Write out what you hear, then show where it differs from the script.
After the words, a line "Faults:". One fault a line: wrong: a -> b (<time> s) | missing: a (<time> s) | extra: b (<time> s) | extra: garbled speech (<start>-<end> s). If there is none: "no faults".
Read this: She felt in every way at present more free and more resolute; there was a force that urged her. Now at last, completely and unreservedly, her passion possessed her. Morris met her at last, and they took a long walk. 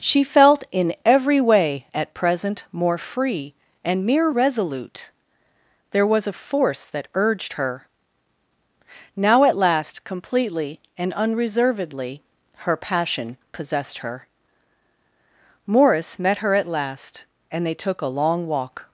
She felt in every way at present more free and mere resolute; there was a force that urged her. Now at last, completely and unreservedly, her passion possessed her. Morris met her at last, and they took a long walk.
Faults:
wrong: more -> mere (4.0 s)